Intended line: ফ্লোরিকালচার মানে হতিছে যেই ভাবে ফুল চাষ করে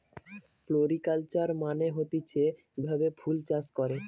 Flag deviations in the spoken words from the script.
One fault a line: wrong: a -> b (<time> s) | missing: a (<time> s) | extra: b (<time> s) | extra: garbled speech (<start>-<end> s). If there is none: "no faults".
missing: যেই (2.4 s)